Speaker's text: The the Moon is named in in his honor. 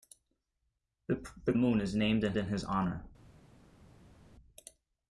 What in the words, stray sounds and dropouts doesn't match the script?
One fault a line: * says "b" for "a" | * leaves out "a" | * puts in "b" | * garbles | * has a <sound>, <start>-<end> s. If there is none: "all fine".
all fine